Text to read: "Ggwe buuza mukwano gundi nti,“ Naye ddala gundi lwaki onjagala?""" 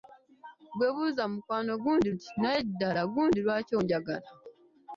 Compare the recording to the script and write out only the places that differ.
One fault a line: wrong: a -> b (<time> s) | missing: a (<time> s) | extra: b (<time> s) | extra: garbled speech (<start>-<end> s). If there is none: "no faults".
no faults